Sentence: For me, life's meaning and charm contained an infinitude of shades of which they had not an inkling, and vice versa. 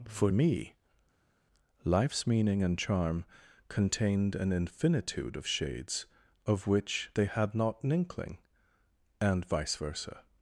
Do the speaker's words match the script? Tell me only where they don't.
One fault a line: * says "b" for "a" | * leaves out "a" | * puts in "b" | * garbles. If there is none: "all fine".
all fine